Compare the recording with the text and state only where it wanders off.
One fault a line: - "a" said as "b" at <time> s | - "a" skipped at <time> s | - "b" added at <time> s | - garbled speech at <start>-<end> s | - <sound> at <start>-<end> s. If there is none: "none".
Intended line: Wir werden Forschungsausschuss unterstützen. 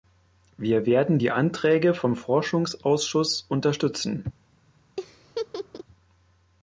- "die Anträge vom" added at 1.2 s
- laugh at 5.0-5.8 s